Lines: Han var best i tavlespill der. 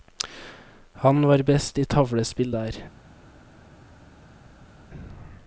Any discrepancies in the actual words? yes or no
no